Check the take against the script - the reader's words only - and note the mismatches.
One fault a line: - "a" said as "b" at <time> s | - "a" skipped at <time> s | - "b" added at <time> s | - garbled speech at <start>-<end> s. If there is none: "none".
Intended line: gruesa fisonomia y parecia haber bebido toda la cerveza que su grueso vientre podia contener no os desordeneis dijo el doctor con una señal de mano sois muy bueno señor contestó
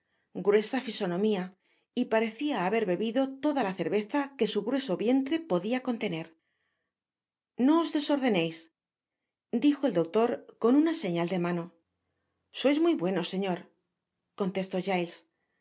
none